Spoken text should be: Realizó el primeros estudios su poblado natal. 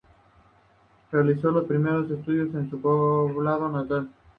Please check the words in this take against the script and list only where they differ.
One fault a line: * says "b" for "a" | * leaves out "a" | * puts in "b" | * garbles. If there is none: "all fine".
* says "los" for "el"
* puts in "en"